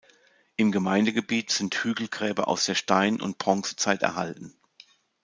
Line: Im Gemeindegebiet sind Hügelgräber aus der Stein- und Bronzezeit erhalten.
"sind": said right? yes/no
yes